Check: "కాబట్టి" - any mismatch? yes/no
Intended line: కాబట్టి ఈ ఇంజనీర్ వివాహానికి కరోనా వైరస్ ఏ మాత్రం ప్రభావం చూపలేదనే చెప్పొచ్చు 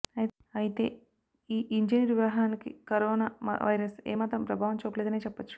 yes